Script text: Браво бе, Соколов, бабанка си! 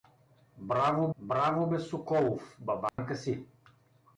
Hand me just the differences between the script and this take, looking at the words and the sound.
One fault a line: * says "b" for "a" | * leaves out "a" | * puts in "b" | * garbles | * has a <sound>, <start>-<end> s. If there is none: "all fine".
* puts in "браво"
* has a dropout, 2.9-3.0 s